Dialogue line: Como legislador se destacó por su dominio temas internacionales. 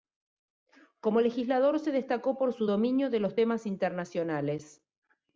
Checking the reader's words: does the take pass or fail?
fail